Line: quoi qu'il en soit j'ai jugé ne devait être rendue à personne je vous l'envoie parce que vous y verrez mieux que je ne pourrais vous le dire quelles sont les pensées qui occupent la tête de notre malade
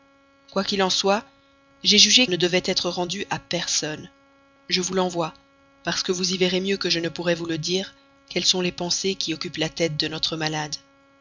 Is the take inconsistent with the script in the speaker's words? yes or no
no